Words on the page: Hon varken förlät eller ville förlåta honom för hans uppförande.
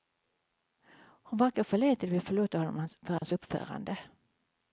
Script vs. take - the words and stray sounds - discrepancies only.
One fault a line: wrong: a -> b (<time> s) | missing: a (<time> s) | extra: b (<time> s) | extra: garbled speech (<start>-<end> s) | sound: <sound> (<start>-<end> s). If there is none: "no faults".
sound: dropout (3.2-3.2 s)